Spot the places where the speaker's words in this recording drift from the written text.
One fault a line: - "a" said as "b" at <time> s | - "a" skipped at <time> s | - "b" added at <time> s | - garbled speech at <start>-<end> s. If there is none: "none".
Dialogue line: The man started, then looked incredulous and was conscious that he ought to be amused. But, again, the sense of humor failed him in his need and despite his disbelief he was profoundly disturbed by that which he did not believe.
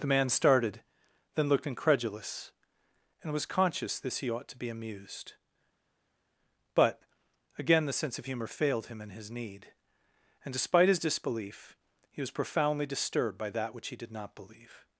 - "that" said as "this" at 4.0 s